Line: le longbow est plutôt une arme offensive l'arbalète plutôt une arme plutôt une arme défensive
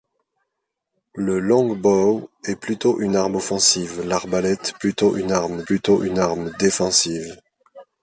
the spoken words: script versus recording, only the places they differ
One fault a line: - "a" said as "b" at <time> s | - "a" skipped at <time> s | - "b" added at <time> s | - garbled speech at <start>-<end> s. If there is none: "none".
none